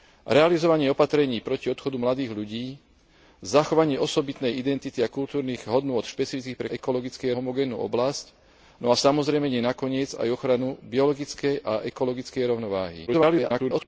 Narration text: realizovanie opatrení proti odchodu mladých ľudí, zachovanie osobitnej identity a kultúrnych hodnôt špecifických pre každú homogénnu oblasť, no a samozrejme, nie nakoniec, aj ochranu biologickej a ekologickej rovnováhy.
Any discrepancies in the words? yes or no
yes